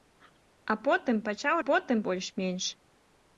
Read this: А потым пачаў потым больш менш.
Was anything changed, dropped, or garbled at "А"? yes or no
no